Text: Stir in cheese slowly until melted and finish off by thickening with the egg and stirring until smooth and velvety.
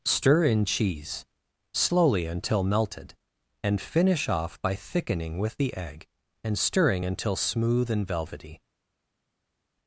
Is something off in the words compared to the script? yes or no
no